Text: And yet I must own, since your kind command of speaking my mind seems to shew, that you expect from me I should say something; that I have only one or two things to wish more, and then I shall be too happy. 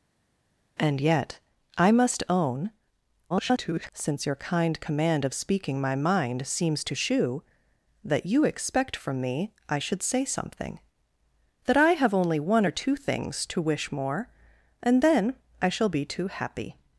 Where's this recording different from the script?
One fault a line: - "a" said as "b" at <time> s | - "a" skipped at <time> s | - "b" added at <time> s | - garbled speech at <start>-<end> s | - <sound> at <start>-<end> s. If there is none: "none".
- garbled speech at 3.3-3.9 s